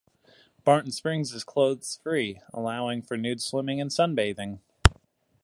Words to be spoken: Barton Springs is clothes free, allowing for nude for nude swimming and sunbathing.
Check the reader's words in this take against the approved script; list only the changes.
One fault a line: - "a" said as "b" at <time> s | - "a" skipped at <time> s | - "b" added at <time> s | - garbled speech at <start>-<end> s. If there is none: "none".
- "for nude" skipped at 3.4 s